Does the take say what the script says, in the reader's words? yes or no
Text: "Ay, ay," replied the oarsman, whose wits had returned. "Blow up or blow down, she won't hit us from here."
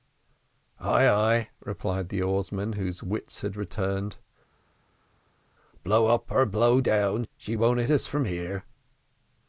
yes